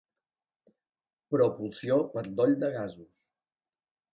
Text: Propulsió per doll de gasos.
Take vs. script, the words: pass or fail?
pass